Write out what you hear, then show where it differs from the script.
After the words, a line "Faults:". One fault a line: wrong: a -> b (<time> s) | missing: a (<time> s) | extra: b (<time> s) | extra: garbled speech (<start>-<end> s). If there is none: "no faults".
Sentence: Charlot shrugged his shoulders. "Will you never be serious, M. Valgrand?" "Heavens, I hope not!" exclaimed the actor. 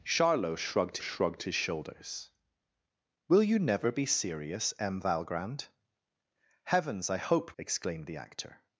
Charlot shrugged shrugged his shoulders. "Will you never be serious, M. Valgrand?" "Heavens, I hope!" exclaimed the actor.
Faults:
extra: shrugged (1.0 s)
missing: not (7.5 s)